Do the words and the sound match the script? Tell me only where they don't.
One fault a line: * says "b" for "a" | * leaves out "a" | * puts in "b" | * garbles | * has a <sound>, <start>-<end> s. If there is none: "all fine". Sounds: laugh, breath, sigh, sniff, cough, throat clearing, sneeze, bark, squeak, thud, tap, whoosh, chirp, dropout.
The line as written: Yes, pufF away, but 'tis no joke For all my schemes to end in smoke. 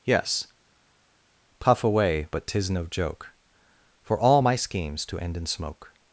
all fine